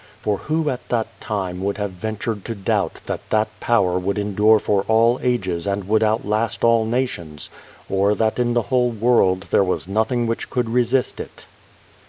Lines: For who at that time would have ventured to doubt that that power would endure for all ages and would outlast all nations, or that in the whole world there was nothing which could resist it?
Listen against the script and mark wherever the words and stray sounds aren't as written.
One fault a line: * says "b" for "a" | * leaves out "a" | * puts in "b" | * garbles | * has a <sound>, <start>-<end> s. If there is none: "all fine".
all fine